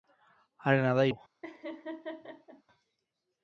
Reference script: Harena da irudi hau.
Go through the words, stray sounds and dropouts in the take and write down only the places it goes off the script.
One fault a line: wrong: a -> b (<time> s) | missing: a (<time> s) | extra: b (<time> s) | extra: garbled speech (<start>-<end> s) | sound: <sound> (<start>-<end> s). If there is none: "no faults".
missing: irudi (1.1 s)
sound: laugh (1.4-2.6 s)